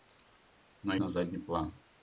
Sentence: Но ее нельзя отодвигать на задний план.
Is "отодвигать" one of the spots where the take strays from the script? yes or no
yes